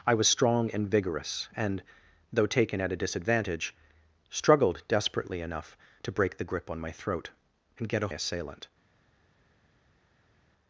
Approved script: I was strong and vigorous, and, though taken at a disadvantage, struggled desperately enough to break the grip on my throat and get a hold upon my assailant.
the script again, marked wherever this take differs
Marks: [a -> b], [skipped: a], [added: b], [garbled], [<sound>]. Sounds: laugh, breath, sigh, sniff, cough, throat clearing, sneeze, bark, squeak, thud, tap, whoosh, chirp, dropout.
I was strong and vigorous, and, though taken at a disadvantage, struggled desperately enough to break the grip on my throat and get a [skipped: hold upon my] assailant.